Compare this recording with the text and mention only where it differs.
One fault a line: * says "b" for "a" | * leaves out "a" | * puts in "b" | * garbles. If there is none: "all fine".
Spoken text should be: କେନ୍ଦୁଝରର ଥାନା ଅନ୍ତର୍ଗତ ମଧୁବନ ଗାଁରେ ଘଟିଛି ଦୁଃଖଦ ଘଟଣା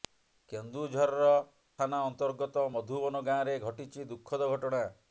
all fine